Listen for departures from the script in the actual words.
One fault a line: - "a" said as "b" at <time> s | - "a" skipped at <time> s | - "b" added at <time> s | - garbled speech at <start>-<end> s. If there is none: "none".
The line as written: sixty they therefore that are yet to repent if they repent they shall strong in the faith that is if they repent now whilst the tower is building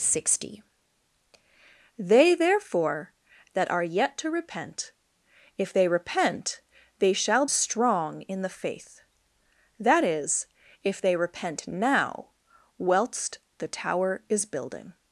none